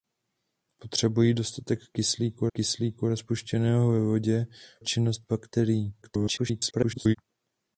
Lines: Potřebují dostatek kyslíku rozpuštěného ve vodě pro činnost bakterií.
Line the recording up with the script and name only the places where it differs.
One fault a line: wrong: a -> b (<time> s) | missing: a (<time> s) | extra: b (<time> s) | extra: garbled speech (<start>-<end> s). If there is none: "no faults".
extra: kyslíku (2.5 s)
missing: pro (4.5 s)
extra: garbled speech (6.0-7.2 s)